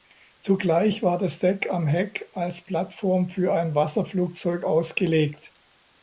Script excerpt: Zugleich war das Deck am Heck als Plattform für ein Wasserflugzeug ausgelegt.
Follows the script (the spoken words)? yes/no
yes